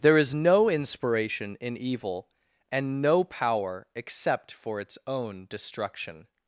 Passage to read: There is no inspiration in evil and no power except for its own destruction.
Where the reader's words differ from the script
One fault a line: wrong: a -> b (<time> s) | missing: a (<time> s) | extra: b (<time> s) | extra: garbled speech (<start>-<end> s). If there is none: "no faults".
no faults